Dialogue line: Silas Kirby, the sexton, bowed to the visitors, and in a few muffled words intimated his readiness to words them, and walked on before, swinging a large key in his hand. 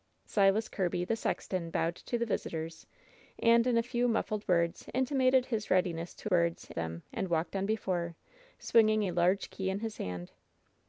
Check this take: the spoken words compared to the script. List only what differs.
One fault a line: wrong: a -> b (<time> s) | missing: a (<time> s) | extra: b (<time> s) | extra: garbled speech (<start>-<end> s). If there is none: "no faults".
no faults